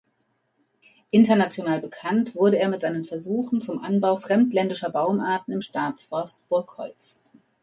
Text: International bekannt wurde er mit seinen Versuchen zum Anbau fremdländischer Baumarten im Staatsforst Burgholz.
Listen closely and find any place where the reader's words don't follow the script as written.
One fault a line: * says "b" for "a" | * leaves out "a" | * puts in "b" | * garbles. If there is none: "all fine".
all fine